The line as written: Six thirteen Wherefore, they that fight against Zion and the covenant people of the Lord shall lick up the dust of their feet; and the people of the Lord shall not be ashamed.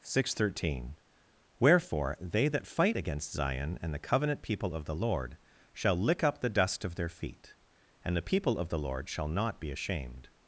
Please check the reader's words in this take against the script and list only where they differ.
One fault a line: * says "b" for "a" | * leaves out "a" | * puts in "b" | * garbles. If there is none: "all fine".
all fine